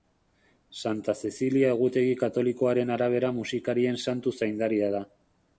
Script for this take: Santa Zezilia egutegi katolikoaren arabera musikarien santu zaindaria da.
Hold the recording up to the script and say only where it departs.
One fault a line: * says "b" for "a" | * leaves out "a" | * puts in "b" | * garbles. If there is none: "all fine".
all fine